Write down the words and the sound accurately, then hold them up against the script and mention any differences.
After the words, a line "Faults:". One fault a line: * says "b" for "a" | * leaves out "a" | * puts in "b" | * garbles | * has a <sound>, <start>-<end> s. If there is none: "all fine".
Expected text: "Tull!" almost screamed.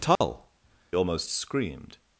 "Tull!" almost screamed.
Faults:
* has a dropout, 0.2-0.2 s